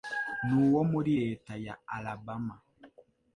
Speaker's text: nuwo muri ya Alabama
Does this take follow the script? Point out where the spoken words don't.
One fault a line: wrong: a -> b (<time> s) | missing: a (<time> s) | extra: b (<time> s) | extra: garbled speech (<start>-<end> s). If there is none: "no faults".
extra: leta (1.2 s)